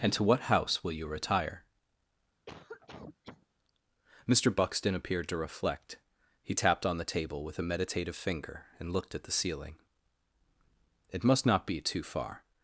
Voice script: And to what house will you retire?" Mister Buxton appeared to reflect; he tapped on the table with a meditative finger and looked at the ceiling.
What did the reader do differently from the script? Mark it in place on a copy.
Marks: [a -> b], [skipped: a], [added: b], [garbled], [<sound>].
And to what house will you retire?" [cough] Mister Buxton appeared to reflect; he tapped on the table with a meditative finger and looked at the ceiling. [added: It must not be too far]